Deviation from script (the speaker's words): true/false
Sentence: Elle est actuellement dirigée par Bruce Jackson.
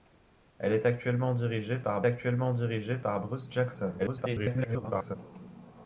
true